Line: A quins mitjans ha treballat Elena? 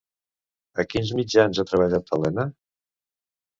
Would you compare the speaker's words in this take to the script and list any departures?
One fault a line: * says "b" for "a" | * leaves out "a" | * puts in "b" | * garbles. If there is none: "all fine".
all fine